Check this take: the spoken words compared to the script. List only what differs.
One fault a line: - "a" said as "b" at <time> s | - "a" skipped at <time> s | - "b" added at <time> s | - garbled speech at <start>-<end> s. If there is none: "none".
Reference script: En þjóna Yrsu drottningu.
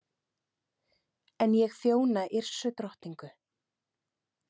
- "ég" added at 1.6 s